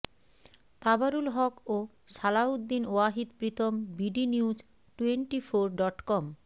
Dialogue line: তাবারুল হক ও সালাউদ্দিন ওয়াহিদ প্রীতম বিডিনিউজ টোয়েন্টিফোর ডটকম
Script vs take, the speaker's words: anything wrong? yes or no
no